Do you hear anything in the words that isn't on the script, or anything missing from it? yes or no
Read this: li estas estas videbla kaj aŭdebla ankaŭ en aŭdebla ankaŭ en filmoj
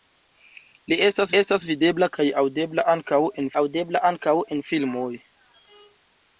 no